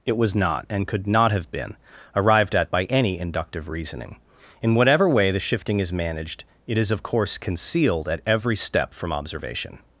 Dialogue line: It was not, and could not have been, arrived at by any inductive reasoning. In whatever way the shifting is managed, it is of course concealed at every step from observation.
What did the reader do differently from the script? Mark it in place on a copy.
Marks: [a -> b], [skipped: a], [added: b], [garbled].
It was not, and could not have been, arrived at by any inductive reasoning. In whatever way the shifting is managed, it is of course concealed at every step from observation.